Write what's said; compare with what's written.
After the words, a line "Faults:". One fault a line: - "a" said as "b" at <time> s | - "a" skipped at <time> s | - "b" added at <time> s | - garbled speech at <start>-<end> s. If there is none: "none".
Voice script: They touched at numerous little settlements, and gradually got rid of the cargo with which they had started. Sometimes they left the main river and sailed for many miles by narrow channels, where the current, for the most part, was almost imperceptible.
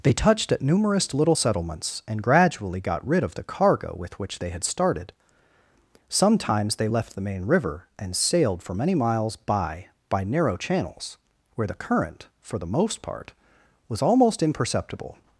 They touched at numerous little settlements, and gradually got rid of the cargo with which they had started. Sometimes they left the main river and sailed for many miles by by narrow channels, where the current, for the most part, was almost imperceptible.
Faults:
- "by" added at 10.1 s